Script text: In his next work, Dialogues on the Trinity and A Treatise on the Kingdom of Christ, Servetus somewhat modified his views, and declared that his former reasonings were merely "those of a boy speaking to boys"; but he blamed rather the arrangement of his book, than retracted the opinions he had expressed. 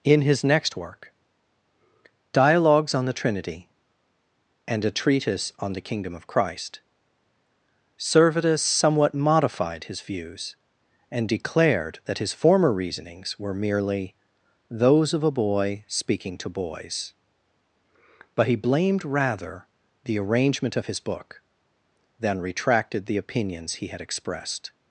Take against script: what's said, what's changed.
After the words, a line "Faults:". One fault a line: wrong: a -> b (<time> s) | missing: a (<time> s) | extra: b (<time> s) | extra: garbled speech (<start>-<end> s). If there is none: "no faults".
In his next work, Dialogues on the Trinity and A Treatise on the Kingdom of Christ, Servetus somewhat modified his views, and declared that his former reasonings were merely "those of a boy speaking to boys"; but he blamed rather the arrangement of his book, than retracted the opinions he had expressed.
Faults:
no faults